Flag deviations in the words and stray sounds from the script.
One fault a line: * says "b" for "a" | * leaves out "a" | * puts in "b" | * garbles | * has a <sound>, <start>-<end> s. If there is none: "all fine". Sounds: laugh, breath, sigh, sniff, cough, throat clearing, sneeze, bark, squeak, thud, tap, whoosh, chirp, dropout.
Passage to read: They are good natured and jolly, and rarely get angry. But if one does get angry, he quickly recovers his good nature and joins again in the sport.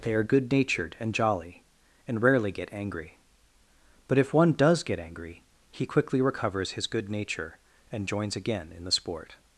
all fine